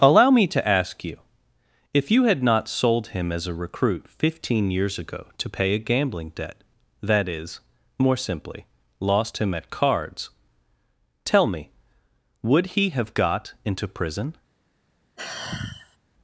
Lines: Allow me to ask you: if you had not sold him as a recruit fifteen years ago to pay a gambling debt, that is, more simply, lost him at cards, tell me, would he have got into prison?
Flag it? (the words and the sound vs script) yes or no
yes